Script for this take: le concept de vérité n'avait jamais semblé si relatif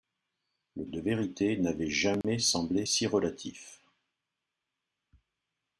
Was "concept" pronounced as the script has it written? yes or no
no